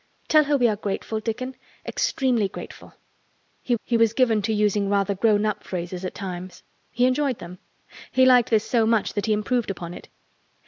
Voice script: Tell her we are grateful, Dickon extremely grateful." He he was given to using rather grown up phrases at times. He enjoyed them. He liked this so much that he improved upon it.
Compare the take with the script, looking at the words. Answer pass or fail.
pass